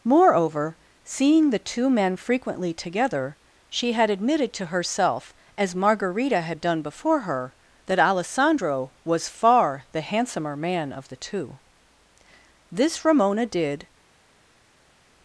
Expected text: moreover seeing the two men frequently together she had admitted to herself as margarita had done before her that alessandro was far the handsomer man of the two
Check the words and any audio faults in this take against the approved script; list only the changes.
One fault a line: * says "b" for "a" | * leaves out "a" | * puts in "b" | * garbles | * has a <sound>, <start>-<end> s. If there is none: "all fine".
* puts in "this ramona did"